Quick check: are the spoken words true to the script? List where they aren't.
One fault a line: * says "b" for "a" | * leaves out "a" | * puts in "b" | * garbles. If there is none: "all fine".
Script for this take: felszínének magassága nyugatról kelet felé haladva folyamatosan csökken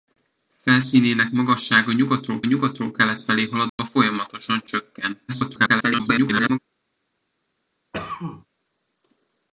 * puts in "nyugatról"
* garbles